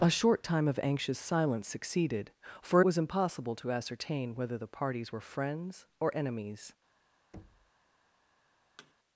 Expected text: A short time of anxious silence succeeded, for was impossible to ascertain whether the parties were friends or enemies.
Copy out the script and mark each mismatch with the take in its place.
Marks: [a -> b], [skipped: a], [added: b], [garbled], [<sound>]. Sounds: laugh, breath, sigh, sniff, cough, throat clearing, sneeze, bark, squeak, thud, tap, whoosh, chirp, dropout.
A short time of anxious silence succeeded, for was impossible to ascertain whether the parties were friends or enemies. [thud] [thud]